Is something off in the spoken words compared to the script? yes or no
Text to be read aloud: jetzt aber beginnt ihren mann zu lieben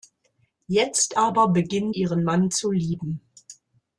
no